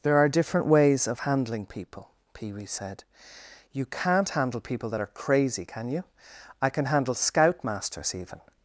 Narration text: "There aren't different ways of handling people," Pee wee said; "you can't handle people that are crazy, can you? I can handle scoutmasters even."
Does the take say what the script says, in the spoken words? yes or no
no